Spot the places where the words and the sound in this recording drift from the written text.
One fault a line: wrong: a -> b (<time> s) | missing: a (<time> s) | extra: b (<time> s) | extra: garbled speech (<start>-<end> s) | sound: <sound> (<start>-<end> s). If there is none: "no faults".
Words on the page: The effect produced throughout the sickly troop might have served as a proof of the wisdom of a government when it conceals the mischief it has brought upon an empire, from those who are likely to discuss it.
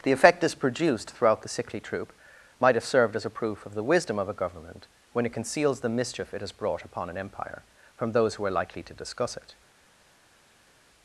extra: this (0.4 s)